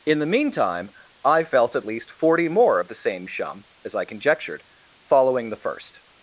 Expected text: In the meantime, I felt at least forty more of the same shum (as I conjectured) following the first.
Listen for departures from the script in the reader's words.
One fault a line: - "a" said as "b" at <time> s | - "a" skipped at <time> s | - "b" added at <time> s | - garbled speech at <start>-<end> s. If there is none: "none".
none